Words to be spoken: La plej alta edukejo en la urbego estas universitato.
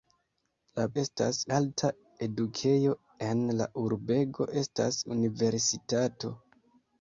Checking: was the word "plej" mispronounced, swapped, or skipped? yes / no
yes